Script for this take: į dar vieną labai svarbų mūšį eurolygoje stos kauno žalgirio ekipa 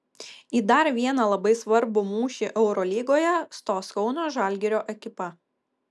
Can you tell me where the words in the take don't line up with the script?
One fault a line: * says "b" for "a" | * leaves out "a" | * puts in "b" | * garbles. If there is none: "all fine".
all fine